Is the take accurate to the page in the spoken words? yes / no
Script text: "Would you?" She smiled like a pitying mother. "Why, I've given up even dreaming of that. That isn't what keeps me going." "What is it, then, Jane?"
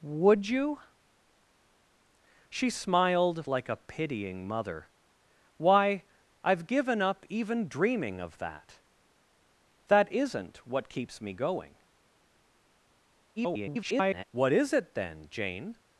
no